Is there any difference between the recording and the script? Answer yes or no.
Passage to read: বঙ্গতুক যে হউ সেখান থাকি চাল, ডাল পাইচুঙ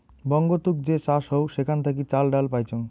yes